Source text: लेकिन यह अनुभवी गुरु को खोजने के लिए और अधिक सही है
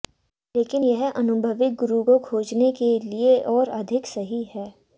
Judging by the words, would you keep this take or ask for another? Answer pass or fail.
pass